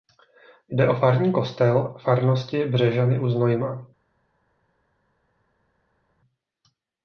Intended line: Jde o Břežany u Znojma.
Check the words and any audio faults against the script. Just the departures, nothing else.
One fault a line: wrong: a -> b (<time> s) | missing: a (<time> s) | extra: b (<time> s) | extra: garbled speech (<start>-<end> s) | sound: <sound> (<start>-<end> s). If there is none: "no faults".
extra: farní kostel farnosti (0.9 s)